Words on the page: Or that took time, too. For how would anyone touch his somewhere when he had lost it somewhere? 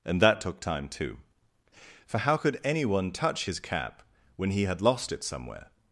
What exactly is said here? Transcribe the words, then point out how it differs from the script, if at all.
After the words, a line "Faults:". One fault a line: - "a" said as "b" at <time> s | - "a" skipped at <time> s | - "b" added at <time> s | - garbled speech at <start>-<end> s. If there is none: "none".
And that took time, too. For how could anyone touch his cap when he had lost it somewhere?
Faults:
- "Or" said as "And" at 0.0 s
- "would" said as "could" at 2.4 s
- "somewhere" said as "cap" at 3.6 s